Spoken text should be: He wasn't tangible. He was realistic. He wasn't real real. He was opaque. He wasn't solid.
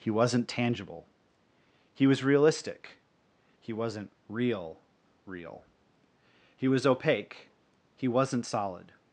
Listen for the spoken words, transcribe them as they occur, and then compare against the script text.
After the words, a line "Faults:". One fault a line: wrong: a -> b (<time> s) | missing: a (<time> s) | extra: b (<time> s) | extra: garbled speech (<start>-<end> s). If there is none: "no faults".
He wasn't tangible. He was realistic. He wasn't real real. He was opaque. He wasn't solid.
Faults:
no faults